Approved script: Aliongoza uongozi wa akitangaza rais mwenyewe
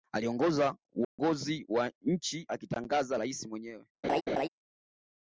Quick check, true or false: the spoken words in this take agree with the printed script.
false